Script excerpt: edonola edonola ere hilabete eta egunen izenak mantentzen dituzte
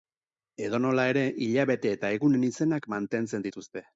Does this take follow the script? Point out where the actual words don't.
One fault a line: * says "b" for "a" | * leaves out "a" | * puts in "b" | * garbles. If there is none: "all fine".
* leaves out "edonola"